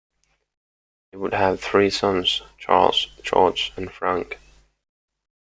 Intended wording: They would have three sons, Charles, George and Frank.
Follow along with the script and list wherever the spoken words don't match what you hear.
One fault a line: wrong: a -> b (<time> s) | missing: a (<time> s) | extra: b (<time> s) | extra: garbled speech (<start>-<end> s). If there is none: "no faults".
no faults